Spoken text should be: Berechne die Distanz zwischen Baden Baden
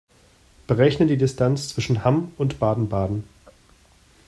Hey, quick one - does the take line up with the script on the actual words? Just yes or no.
no